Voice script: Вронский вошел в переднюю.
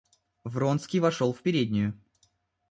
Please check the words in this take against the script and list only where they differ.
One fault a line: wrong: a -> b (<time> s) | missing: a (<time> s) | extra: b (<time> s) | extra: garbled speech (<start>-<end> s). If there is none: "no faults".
no faults